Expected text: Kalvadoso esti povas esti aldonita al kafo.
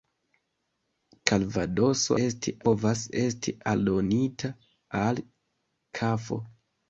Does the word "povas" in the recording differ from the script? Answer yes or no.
no